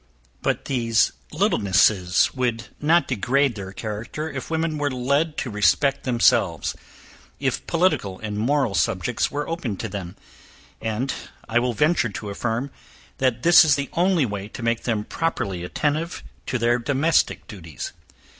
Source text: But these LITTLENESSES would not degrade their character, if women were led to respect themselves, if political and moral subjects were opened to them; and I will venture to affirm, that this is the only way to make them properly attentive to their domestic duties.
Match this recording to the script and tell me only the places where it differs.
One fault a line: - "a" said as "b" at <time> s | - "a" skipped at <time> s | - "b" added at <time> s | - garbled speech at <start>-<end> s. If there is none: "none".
none